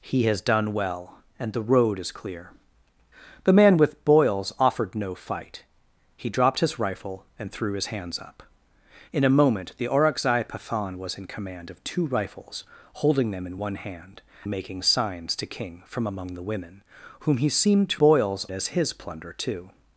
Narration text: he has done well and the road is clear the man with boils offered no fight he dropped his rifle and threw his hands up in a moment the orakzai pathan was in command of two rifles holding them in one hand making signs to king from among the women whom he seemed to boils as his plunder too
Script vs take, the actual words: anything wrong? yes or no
no